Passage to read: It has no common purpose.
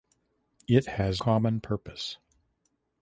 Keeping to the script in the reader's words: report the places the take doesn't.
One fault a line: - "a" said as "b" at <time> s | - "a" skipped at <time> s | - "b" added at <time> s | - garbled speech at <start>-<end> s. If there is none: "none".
- "no" skipped at 1.2 s